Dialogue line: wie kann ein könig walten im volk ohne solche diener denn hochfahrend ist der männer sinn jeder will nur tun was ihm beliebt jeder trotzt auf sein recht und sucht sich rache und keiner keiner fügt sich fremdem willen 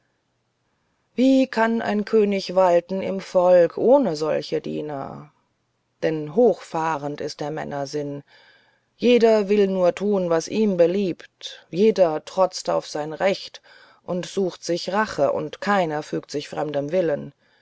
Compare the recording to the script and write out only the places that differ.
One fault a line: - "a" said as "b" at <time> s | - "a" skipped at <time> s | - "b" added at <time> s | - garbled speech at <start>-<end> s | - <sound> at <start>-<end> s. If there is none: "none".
- "keiner" skipped at 16.0 s